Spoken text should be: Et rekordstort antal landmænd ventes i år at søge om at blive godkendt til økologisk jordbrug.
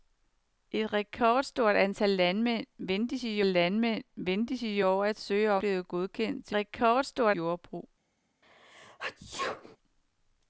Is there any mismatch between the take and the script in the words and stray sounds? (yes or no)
yes